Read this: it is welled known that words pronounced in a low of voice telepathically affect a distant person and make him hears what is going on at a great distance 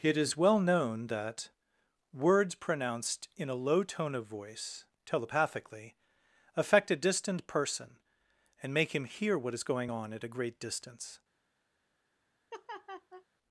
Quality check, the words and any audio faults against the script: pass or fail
fail